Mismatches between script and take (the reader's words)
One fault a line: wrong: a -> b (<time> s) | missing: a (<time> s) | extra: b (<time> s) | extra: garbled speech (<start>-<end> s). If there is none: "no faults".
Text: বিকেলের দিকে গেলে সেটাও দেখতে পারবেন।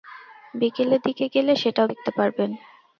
no faults